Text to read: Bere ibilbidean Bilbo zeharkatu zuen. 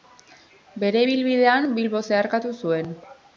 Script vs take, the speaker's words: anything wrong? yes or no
no